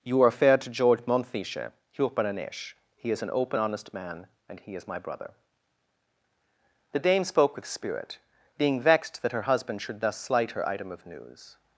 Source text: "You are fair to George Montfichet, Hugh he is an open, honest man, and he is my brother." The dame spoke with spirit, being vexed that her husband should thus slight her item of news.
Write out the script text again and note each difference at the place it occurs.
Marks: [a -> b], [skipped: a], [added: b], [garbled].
"You are fair to George Montfichet, Hugh he is an open, honest man, and he is my brother." The dame spoke with spirit, being vexed that her husband should thus slight her item of news.